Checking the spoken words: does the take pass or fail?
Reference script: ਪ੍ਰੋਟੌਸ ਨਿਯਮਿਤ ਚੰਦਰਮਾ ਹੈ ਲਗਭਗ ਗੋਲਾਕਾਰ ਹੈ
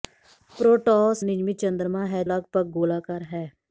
pass